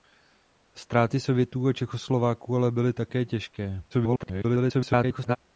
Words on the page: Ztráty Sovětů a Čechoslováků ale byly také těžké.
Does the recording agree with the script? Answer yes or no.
no